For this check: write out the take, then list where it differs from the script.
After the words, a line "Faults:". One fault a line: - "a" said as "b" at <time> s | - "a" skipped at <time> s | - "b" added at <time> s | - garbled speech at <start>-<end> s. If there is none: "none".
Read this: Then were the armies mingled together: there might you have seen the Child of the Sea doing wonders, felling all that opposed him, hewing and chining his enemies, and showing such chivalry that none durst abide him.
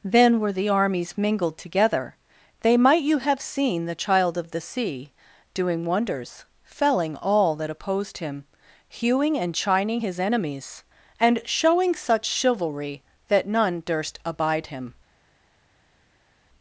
Then were the armies mingled together: they might you have seen the Child of the Sea doing wonders, felling all that opposed him, hewing and chining his enemies, and showing such chivalry that none durst abide him.
Faults:
- "there" said as "they" at 2.6 s